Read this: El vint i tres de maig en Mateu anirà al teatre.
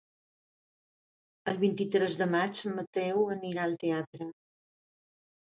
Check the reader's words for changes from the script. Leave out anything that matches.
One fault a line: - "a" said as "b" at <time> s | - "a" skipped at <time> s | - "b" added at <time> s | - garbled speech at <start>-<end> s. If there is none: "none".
none